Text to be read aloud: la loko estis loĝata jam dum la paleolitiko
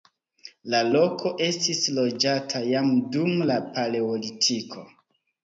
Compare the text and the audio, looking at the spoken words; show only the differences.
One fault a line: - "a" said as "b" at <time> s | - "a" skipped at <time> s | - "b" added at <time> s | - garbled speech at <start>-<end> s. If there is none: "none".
none